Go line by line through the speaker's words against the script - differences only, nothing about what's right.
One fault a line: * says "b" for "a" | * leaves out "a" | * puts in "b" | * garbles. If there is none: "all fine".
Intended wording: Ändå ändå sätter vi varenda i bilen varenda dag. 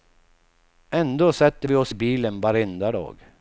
* leaves out "ändå"
* says "oss" for "varenda"